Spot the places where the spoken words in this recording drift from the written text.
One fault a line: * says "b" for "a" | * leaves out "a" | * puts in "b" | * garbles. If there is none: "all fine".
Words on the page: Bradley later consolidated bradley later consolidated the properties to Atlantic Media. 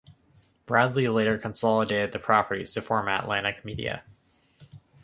* leaves out "bradley later consolidated"
* puts in "form"